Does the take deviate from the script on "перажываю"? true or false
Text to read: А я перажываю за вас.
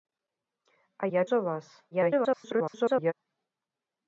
true